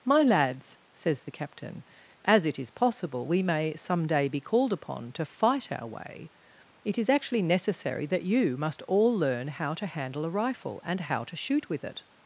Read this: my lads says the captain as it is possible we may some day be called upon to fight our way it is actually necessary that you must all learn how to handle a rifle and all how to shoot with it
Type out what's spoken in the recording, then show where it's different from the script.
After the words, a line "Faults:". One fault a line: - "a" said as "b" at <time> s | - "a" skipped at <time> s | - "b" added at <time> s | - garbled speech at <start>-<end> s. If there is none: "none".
my lads says the captain as it is possible we may some day be called upon to fight our way it is actually necessary that you must all learn how to handle a rifle and how to shoot with it
Faults:
- "all" skipped at 11.0 s